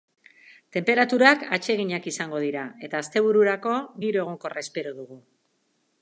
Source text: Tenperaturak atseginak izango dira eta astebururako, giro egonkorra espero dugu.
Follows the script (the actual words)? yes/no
yes